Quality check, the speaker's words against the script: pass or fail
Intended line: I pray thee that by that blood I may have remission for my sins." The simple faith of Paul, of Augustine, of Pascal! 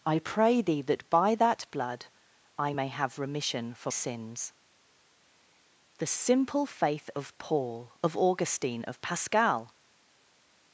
fail